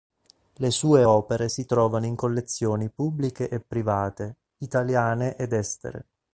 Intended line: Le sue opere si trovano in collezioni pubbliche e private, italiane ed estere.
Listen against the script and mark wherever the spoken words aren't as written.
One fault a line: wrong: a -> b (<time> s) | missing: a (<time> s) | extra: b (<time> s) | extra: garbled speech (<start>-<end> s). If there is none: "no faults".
no faults